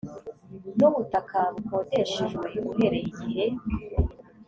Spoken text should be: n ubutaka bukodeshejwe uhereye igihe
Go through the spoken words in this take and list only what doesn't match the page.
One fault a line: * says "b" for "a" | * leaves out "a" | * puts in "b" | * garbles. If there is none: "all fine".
all fine